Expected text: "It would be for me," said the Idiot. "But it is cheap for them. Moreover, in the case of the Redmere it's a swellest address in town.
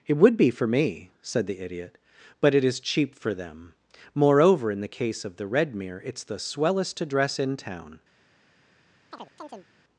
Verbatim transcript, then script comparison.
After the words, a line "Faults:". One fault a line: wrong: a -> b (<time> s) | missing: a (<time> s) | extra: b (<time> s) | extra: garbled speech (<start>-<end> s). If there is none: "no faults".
"It would be for me," said the Idiot. "But it is cheap for them. Moreover, in the case of the Redmere it's the swellest address in town.
Faults:
wrong: a -> the (6.2 s)